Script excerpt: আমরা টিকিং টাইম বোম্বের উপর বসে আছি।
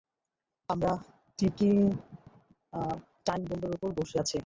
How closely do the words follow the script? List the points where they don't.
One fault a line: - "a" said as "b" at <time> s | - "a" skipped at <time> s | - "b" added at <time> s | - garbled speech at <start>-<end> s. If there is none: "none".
none